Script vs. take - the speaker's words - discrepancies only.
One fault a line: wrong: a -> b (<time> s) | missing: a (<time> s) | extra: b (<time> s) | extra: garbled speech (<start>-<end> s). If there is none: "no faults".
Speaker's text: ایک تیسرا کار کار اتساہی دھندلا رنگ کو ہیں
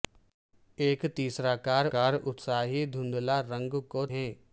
no faults